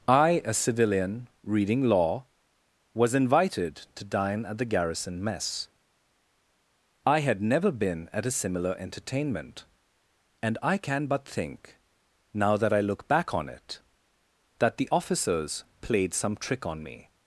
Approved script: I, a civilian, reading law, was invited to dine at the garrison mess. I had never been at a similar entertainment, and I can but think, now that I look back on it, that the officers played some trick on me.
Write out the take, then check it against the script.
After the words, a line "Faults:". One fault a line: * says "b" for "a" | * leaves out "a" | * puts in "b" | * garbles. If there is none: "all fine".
I, a civilian, reading law, was invited to dine at the garrison mess. I had never been at a similar entertainment, and I can but think, now that I look back on it, that the officers played some trick on me.
Faults:
all fine